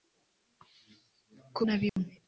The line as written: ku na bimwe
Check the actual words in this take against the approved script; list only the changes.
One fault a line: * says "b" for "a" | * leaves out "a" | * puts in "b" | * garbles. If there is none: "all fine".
all fine